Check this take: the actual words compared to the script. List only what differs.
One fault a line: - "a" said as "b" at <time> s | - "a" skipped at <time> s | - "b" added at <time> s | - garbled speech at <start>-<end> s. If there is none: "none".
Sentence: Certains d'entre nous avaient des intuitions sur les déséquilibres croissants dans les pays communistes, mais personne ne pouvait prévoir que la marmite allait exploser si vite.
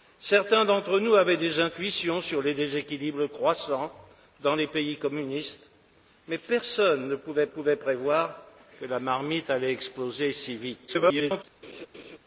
- "pouvait" added at 7.4 s
- garbled speech at 10.9-11.4 s